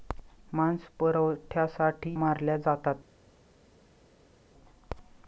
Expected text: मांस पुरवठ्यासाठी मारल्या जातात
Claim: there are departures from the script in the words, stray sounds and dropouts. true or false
false